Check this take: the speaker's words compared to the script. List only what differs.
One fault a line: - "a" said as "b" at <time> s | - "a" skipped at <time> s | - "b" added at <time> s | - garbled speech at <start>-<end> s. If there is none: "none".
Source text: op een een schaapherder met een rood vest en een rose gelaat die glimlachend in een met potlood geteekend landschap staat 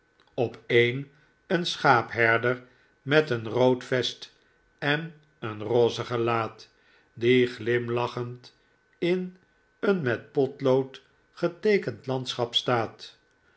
none